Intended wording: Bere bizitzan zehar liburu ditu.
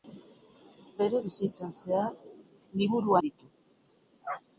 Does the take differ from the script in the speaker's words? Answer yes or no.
no